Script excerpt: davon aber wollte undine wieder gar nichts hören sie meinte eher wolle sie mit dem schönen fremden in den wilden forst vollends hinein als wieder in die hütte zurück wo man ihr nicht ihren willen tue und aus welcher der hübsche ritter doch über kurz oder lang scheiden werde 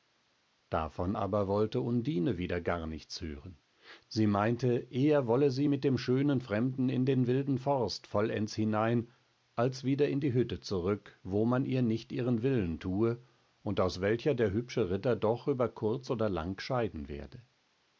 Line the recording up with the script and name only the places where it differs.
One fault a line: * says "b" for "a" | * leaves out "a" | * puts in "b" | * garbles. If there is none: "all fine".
all fine